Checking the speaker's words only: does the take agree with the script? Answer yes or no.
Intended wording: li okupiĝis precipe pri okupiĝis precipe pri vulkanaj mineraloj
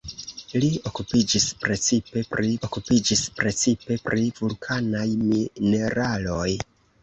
yes